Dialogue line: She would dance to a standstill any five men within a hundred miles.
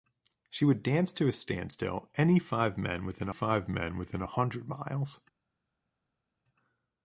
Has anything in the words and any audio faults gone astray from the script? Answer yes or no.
yes